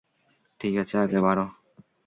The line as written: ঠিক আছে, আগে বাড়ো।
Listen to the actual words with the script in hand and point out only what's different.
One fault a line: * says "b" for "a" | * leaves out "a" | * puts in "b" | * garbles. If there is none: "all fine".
all fine